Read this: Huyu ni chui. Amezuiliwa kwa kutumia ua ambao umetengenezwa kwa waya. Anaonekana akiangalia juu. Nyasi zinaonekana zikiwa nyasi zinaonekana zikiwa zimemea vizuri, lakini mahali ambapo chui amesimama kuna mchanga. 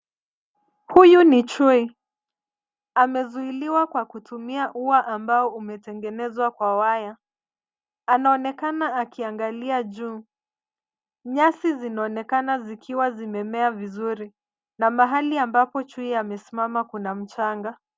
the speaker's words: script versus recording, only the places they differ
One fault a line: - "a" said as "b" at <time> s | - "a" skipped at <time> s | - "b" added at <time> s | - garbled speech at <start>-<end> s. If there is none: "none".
- "nyasi zinaonekana zikiwa" skipped at 13.1 s
- "lakini" said as "na" at 14.8 s